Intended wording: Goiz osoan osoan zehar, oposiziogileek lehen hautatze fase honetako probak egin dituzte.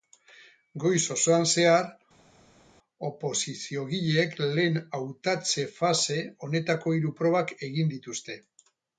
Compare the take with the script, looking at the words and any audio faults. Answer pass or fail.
fail